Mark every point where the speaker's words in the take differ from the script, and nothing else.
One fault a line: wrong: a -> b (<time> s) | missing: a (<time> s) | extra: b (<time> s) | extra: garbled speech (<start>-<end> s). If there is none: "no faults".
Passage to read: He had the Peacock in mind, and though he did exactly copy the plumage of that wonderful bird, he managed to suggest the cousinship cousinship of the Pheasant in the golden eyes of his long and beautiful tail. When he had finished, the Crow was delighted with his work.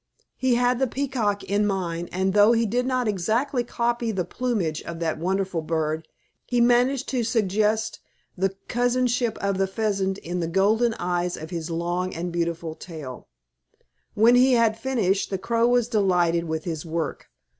extra: not (2.9 s)
missing: cousinship (9.4 s)